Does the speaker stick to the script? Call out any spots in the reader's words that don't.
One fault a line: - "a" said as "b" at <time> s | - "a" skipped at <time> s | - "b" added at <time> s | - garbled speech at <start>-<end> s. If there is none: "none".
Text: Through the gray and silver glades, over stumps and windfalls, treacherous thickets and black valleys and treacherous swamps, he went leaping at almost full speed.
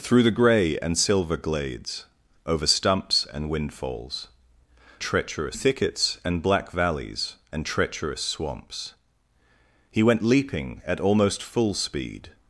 none